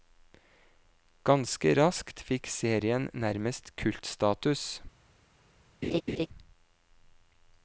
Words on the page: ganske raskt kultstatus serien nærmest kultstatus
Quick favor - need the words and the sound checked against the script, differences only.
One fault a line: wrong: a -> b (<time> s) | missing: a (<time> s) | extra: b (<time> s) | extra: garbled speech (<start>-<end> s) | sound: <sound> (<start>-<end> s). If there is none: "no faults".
wrong: kultstatus -> fikk (2.3 s)
sound: laugh (5.8-6.3 s)